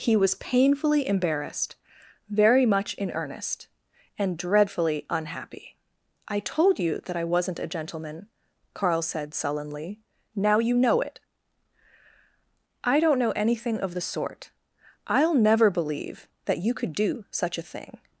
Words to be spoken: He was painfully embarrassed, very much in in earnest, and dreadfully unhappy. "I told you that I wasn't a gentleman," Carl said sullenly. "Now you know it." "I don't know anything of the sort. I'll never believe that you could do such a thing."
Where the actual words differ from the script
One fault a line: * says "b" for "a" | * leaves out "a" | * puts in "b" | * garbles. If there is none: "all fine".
* leaves out "in"